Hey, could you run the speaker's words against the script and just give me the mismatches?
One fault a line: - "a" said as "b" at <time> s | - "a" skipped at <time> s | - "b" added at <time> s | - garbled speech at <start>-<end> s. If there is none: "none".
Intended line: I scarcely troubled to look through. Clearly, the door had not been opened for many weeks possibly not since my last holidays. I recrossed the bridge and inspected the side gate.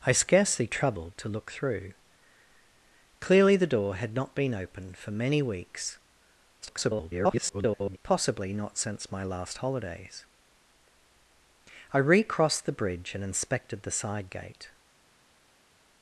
- garbled speech at 6.6-8.0 s